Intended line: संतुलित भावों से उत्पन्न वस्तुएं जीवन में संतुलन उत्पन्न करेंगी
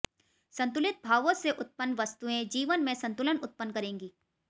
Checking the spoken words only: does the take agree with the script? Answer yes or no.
yes